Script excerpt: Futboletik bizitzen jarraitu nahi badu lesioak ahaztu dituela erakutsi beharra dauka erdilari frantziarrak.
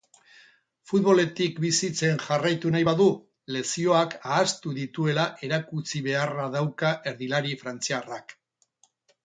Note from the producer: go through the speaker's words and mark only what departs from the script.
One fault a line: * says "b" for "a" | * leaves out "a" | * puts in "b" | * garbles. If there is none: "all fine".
all fine